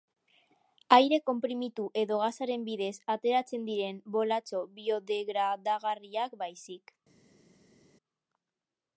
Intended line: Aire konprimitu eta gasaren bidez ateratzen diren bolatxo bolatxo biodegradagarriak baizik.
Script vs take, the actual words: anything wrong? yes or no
yes